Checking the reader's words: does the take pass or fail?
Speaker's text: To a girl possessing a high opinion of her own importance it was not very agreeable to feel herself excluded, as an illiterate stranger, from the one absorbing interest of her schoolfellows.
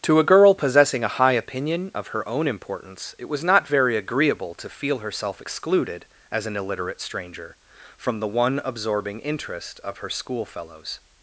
pass